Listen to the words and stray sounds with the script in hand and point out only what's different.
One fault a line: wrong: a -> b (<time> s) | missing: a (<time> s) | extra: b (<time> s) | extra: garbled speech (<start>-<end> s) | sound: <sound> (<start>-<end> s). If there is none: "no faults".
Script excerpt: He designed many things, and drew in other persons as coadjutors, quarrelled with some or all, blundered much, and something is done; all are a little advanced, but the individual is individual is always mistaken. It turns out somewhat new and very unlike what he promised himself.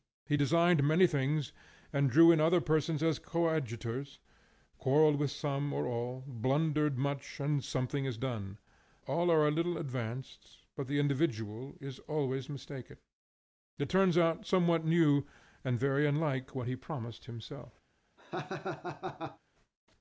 missing: individual is (12.0 s)
sound: laugh (18.2-19.4 s)